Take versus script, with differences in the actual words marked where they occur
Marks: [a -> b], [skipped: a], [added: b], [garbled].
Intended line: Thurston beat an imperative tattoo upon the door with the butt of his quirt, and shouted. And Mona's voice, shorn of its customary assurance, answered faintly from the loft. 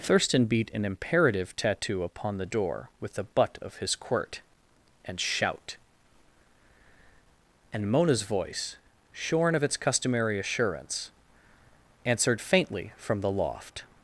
Thurston beat an imperative tattoo upon the door with the butt of his quirt, and [shouted. -> shout] And Mona's voice, shorn of its customary assurance, answered faintly from the loft.